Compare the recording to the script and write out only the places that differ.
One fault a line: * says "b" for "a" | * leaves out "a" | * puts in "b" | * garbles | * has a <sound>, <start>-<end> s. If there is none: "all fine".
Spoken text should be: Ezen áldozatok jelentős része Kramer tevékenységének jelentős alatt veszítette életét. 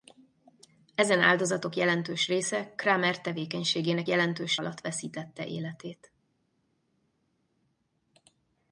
all fine